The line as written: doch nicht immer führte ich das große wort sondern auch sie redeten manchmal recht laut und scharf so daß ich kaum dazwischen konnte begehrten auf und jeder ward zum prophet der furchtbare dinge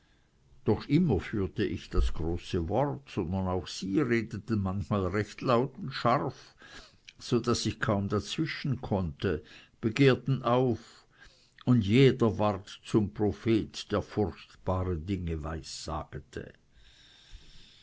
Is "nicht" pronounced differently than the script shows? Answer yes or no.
yes